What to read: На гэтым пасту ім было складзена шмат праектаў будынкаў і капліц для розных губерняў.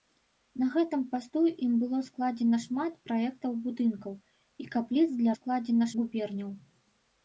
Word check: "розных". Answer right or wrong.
wrong